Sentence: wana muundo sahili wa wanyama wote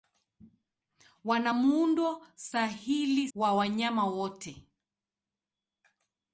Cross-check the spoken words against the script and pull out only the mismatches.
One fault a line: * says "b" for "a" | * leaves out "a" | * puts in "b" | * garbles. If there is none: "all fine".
all fine